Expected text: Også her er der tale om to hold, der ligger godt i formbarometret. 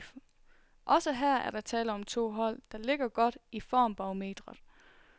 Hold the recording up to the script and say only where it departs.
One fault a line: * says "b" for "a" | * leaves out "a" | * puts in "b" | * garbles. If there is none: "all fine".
all fine